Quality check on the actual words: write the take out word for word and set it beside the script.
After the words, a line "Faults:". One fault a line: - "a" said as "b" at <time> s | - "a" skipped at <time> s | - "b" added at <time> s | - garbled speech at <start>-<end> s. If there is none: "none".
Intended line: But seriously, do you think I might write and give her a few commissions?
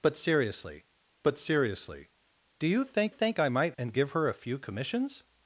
But seriously but seriously, do you think think I might and give her a few commissions?
Faults:
- "but seriously" added at 1.2 s
- "think" added at 3.1 s
- "write" skipped at 3.8 s